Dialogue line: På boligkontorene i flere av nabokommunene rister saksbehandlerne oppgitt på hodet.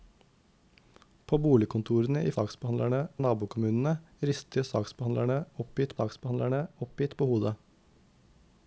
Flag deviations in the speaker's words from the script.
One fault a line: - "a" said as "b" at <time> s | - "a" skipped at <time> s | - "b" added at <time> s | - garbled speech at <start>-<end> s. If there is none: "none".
- "flere" said as "saksbehandlerne" at 2.3 s
- "saksbehandlerne oppgitt" added at 6.0 s